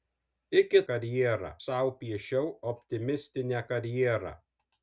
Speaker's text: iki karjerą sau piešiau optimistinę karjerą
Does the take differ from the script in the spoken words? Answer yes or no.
no